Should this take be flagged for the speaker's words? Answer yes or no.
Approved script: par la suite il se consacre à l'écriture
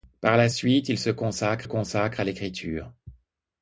yes